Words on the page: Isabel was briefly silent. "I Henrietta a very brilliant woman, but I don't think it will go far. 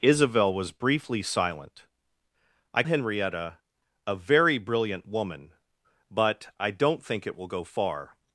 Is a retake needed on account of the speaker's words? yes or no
no